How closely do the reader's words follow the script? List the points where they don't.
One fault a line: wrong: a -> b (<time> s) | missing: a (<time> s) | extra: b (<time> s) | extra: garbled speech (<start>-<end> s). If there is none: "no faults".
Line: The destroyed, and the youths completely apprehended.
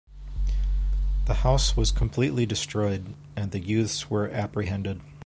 extra: house was completely (1.4 s)
wrong: completely -> were (4.1 s)